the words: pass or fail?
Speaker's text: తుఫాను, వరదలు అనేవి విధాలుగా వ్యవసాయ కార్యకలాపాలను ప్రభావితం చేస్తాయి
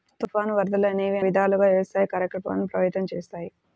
pass